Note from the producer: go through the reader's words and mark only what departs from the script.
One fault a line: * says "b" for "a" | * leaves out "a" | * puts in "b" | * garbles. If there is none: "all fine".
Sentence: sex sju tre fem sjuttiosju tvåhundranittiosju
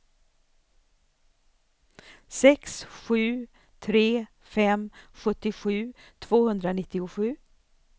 all fine